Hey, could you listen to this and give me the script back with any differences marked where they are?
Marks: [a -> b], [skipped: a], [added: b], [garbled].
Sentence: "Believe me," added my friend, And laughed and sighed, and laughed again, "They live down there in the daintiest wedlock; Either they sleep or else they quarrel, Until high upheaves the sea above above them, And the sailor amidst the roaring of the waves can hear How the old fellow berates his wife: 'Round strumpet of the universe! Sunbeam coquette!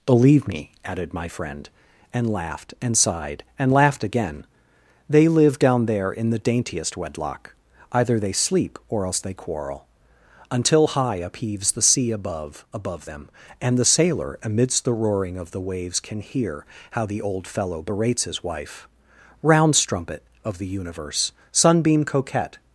"Believe me," added my friend, And laughed and sighed, and laughed again, "They live down there in the daintiest wedlock; Either they sleep or else they quarrel, Until high upheaves the sea above above them, And the sailor amidst the roaring of the waves can hear How the old fellow berates his wife: 'Round strumpet of the universe! Sunbeam coquette!